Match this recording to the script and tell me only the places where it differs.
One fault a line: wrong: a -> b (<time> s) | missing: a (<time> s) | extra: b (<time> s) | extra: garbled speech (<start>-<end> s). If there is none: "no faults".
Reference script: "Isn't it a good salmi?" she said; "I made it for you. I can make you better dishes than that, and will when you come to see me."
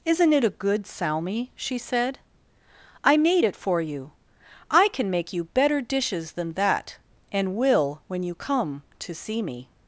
no faults